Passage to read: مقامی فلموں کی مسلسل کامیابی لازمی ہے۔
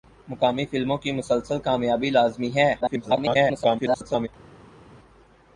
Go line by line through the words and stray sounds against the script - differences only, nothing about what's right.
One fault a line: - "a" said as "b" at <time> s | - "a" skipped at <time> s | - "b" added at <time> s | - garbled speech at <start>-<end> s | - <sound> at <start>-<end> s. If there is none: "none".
- garbled speech at 2.8-4.3 s